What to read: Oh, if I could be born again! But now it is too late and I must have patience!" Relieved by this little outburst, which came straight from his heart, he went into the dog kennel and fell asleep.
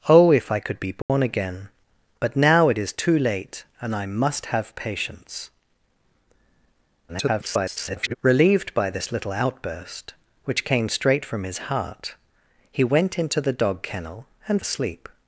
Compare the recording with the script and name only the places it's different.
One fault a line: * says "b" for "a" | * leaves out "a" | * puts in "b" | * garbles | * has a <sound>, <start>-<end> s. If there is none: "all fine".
* has a dropout, 1.0-1.1 s
* garbles
* leaves out "fell"